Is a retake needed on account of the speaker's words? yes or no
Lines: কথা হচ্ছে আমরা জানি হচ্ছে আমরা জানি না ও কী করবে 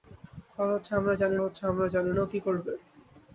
no